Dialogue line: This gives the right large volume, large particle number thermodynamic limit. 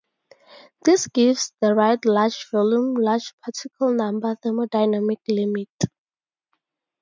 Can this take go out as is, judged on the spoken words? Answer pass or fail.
pass